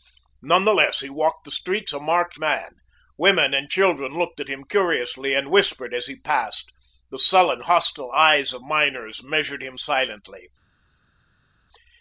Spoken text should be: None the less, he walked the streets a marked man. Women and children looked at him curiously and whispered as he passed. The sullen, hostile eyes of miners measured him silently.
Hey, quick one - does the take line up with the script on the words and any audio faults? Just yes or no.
yes